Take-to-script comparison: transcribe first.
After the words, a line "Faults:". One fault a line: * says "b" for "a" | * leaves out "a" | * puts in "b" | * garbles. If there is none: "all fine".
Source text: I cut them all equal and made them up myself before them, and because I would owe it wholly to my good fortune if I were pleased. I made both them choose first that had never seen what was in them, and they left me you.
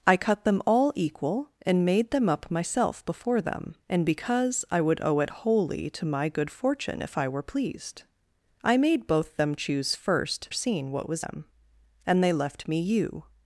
I cut them all equal and made them up myself before them, and because I would owe it wholly to my good fortune if I were pleased. I made both them choose first seen what was them, and they left me you.
Faults:
* leaves out "that had never"
* leaves out "in"